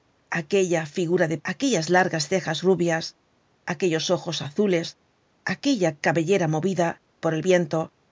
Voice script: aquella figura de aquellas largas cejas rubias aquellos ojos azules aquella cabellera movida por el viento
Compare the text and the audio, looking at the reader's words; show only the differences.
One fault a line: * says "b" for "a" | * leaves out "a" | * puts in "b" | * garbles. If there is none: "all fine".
all fine